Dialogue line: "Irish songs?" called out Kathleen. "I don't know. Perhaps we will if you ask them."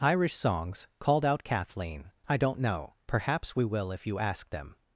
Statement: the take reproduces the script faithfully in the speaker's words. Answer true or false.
true